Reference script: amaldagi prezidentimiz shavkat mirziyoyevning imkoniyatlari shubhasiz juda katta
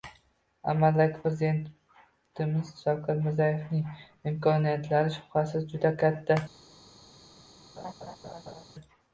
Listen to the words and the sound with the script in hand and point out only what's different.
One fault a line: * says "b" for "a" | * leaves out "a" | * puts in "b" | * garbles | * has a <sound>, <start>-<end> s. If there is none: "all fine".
* has a laugh, 7.8-8.6 s